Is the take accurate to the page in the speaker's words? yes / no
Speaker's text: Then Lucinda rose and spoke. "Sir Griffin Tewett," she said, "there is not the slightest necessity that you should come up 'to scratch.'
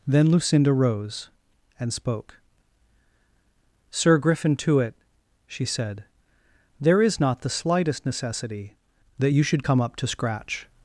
yes